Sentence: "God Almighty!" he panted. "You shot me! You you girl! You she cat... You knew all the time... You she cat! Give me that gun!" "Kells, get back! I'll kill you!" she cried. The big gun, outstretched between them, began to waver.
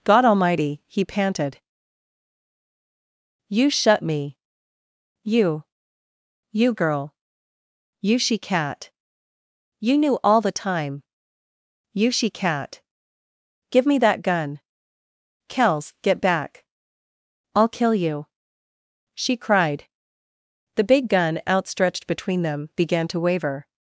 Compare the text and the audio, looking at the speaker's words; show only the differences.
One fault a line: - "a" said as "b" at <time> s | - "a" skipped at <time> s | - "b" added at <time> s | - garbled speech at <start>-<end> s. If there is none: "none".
- "shot" said as "shut" at 3.7 s